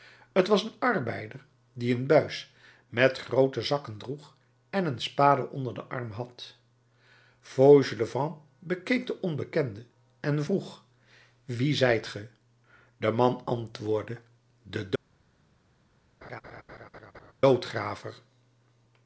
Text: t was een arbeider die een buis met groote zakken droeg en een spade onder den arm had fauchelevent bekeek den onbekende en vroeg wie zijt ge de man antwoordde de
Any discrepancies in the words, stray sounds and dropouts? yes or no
yes